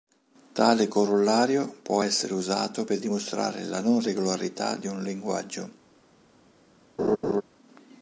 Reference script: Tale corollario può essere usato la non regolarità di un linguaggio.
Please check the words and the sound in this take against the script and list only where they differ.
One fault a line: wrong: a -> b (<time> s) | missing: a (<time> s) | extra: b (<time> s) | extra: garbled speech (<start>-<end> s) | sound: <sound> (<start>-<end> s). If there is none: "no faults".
extra: per dimostrare (2.8 s)
sound: laugh (7.0-7.4 s)